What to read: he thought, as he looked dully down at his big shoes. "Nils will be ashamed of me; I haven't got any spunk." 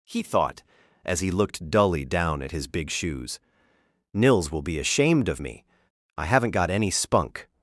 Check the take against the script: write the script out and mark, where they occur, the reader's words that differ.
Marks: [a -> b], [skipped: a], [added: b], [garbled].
he thought, as he looked dully down at his big shoes. "Nils will be ashamed of me; I haven't got any spunk."